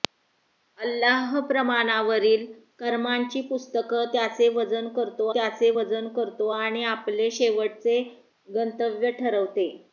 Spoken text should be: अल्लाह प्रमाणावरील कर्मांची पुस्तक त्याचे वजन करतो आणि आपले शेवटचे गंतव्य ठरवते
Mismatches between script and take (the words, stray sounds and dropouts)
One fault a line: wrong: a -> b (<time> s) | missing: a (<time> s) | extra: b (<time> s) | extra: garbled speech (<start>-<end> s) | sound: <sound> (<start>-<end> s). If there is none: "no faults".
extra: त्याचे वजन करतो (5.3 s)